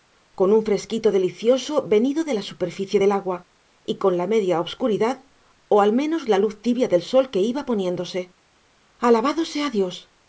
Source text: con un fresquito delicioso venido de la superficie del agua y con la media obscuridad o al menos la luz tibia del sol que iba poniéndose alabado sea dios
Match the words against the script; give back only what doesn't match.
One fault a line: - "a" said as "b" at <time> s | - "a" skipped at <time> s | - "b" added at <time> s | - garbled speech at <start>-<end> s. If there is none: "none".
none